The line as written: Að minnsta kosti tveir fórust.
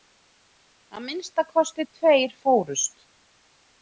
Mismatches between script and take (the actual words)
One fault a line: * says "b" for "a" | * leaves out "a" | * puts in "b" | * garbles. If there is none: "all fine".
all fine